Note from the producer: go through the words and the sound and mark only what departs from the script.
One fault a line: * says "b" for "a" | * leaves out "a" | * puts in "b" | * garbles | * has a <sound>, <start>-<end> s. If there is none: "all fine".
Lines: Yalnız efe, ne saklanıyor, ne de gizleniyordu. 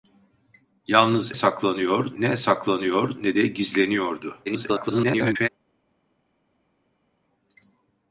* says "saklanıyor" for "efe"
* garbles